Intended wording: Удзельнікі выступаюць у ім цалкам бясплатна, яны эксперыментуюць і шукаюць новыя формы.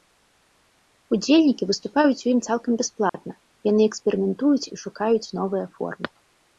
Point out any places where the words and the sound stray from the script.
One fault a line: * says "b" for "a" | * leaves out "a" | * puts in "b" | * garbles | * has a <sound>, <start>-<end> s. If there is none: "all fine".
* has a dropout, 3.1-3.1 s